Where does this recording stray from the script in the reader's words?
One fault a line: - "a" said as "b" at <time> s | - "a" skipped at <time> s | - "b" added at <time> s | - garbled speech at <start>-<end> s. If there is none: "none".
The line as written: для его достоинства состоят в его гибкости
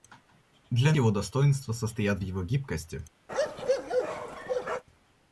none